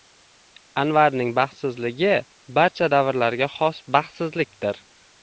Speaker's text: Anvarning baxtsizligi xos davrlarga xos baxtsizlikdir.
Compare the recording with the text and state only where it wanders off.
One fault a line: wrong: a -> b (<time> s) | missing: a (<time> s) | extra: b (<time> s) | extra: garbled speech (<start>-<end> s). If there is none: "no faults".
wrong: xos -> barcha (2.6 s)